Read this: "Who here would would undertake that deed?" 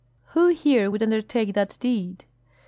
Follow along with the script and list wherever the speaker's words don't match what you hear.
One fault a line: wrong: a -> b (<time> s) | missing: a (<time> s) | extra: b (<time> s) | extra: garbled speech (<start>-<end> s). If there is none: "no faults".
missing: would (1.0 s)